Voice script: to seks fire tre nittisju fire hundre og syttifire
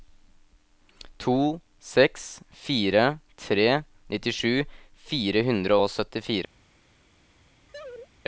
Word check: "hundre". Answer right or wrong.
right